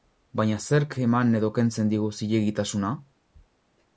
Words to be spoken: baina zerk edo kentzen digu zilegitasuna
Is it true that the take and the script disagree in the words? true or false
true